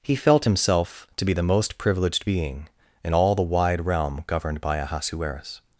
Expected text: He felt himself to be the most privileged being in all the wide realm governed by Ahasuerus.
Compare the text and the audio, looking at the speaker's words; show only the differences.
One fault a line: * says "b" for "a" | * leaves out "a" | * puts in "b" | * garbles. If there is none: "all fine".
all fine